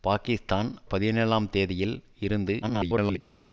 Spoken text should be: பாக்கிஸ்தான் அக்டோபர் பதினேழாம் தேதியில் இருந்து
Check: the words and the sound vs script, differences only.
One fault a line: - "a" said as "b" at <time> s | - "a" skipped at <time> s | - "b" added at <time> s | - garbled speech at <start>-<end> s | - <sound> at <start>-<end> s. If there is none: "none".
- "அக்டோபர்" skipped at 0.7 s
- garbled speech at 2.6-3.2 s